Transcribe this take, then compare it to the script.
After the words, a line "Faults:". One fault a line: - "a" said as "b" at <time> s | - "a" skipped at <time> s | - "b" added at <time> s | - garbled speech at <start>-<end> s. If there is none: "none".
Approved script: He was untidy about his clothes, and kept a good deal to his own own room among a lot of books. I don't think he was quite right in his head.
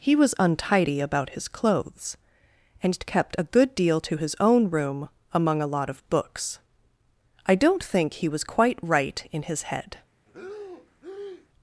He was untidy about his clothes, and kept a good deal to his own room among a lot of books. I don't think he was quite right in his head.
Faults:
- "own" skipped at 4.7 s